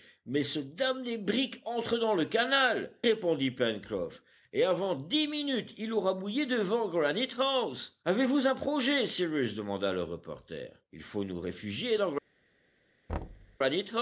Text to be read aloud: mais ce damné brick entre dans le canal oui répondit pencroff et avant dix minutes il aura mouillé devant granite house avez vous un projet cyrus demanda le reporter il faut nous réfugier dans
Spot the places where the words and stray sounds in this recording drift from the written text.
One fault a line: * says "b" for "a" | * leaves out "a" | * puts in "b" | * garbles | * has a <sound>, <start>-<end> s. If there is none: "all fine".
* leaves out "oui"
* has a thud, 13.1-13.6 s